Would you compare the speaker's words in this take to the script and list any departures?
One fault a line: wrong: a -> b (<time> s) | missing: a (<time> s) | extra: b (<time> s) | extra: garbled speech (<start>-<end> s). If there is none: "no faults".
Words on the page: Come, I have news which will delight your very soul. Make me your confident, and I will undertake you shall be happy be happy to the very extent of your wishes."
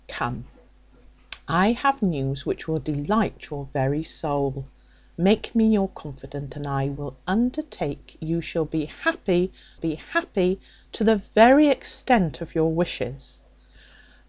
no faults